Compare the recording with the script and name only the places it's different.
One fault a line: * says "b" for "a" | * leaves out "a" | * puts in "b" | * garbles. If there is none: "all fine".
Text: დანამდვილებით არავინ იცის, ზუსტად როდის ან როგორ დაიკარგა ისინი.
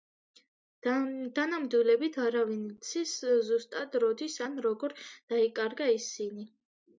all fine